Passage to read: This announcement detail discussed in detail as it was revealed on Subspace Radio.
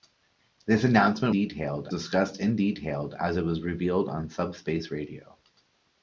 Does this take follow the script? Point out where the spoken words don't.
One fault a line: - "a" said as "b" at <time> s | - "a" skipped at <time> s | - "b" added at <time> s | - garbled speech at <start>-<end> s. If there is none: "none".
none